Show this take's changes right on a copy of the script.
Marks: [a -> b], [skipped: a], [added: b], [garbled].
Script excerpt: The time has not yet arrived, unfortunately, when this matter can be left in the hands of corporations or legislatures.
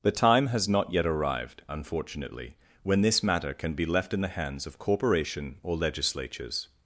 The time has not yet arrived, unfortunately, when this matter can be left in the hands of [corporations -> corporation] or legislatures.